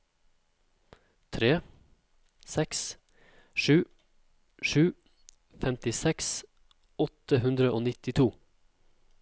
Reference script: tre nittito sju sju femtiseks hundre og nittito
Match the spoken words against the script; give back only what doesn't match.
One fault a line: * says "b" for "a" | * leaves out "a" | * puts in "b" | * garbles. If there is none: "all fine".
* says "seks" for "nittito"
* puts in "åtte"